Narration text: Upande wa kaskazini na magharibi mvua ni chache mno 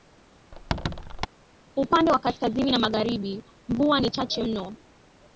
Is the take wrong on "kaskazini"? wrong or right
right